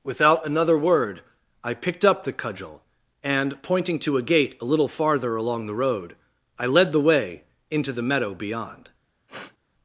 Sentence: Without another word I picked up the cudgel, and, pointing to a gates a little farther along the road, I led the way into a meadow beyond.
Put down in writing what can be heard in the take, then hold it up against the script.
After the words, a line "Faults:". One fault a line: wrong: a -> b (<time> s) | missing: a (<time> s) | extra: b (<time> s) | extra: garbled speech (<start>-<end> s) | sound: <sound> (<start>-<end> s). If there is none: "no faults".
Without another word I picked up the cudgel, and, pointing to a gate a little farther along the road, I led the way into the meadow beyond.
Faults:
wrong: gates -> gate (4.2 s)
wrong: a -> the (7.9 s)
sound: sniff (9.3-9.6 s)